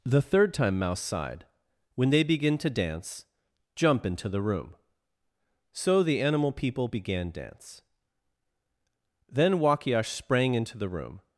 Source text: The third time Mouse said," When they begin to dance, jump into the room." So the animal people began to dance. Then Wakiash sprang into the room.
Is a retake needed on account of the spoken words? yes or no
yes